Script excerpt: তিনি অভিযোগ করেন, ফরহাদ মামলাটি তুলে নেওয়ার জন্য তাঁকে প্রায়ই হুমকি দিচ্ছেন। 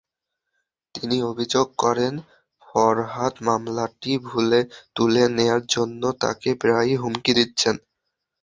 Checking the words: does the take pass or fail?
pass